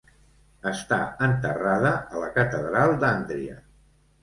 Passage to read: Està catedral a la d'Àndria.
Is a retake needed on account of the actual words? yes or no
yes